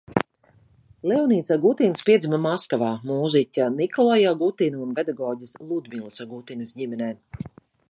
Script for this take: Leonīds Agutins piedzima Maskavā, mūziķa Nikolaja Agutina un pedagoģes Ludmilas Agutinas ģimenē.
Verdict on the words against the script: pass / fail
pass